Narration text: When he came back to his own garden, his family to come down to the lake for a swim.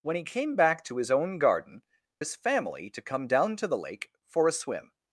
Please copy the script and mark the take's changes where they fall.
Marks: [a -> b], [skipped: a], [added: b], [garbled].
When he came back to his own garden, his family to come down to the lake for a swim.